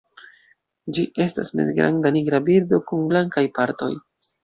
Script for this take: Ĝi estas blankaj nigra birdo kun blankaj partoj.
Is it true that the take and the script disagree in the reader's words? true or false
true